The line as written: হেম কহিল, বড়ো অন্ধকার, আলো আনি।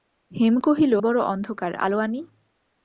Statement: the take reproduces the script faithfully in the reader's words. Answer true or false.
true